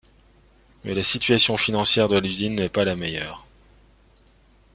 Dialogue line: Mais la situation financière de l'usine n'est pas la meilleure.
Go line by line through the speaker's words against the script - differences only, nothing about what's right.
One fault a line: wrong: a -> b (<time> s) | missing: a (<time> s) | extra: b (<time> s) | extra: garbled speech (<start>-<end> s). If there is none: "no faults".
no faults